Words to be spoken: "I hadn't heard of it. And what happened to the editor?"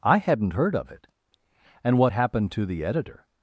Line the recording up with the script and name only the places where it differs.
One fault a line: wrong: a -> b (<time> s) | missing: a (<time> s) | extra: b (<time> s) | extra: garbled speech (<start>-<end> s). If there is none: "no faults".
no faults